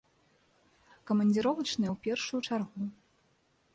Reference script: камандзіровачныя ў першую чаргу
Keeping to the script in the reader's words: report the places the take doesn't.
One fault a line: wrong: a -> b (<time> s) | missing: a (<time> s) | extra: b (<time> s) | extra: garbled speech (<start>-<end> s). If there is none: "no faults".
no faults